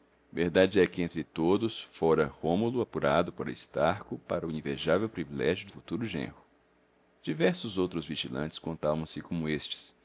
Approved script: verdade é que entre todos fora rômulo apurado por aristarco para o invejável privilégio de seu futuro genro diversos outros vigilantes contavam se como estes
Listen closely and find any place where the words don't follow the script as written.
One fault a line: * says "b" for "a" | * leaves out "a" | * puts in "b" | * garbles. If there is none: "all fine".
* leaves out "seu"